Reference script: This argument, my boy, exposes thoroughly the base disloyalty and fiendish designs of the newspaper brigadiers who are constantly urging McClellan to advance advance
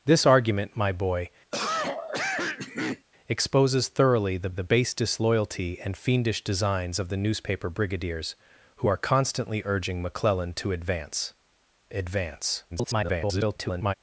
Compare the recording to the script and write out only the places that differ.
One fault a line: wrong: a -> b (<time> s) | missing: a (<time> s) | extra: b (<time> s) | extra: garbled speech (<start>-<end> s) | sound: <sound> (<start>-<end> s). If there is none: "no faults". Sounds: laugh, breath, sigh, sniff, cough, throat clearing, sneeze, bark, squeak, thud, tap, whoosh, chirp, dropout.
sound: cough (1.5-3.1 s)
extra: the (4.5 s)
extra: garbled speech (12.7-13.9 s)